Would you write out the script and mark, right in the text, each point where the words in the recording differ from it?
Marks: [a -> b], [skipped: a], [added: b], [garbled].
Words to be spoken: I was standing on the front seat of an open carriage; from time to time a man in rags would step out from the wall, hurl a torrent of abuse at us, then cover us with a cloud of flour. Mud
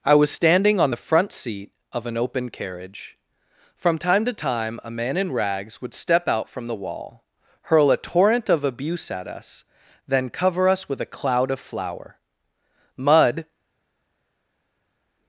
I was standing on the front seat of an open carriage; from time to time a man in rags would step out from the wall, hurl a torrent of abuse at us, then cover us with a cloud of flour. Mud